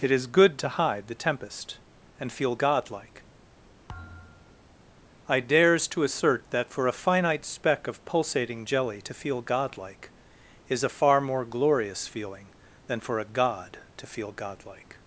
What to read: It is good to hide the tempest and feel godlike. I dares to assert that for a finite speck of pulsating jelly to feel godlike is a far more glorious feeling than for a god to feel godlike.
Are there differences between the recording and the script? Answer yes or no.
no